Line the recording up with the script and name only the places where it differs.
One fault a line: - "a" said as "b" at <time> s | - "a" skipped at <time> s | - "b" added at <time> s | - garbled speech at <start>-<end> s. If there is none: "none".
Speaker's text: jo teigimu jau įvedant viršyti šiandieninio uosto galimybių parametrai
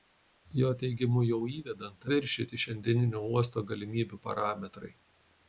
none